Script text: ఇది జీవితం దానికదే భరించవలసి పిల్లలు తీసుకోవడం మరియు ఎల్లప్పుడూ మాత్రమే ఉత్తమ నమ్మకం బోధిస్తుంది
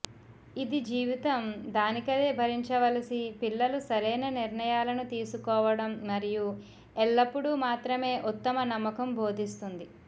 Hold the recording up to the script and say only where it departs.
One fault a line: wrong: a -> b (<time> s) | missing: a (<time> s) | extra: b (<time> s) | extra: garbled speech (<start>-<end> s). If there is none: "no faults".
extra: సరైన నిర్ణయాలను (3.9 s)